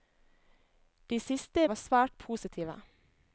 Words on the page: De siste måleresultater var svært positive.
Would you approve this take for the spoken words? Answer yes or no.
no